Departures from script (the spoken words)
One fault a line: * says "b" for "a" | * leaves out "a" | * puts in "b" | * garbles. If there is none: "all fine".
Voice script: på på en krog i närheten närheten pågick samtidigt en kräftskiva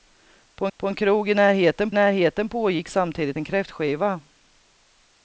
all fine